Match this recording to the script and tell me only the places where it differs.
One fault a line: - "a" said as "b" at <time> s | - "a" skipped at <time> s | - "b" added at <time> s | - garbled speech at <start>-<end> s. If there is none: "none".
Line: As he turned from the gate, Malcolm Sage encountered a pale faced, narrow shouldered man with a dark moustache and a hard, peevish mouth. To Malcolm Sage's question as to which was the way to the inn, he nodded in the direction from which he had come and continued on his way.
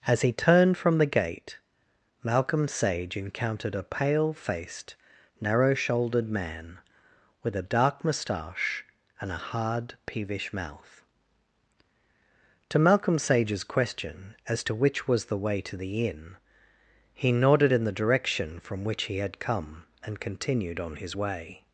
none